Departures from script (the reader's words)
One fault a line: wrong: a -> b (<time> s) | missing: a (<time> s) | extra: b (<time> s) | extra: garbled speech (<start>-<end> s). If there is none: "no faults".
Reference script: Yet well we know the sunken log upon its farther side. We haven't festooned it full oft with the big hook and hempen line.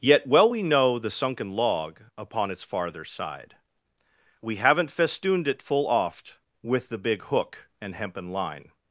no faults